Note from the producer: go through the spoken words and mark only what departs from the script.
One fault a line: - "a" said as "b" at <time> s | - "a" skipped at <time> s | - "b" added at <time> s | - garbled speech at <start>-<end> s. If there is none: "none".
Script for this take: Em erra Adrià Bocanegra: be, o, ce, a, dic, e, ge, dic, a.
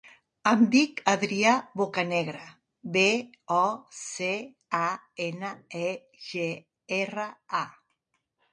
- "erra" said as "dic" at 0.8 s
- "dic" said as "ena" at 5.3 s
- "dic" said as "erra" at 7.0 s